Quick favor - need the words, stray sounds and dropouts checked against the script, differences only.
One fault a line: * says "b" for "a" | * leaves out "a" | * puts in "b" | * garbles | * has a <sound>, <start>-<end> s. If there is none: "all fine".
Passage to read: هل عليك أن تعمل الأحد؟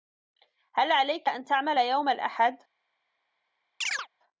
* puts in "يوم"
* has a chirp, 3.8-4.1 s